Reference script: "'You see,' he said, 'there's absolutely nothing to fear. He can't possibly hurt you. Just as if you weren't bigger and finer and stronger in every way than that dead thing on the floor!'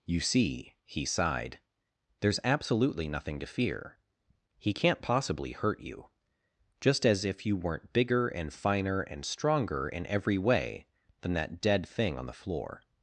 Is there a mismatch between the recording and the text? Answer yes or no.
yes